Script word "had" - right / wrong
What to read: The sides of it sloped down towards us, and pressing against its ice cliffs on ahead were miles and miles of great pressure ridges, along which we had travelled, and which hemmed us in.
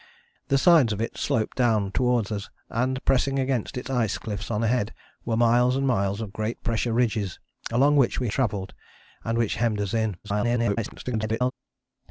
wrong